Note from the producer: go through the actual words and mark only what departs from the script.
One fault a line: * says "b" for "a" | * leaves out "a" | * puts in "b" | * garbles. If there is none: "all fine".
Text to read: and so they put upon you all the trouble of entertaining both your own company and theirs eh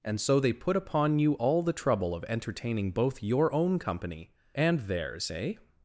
all fine